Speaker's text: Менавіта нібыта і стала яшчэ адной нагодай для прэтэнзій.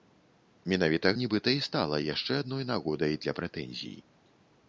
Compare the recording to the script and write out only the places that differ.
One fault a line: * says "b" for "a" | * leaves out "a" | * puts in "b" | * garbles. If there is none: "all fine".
all fine